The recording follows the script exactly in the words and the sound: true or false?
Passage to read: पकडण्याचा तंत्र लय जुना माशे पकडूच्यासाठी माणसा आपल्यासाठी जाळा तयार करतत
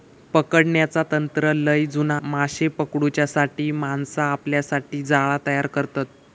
true